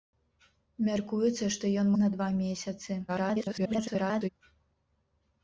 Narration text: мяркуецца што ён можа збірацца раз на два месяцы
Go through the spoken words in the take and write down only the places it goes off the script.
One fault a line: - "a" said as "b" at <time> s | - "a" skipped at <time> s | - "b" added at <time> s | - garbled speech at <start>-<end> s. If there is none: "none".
- "можа збірацца раз" skipped at 1.9 s
- garbled speech at 3.1-4.3 s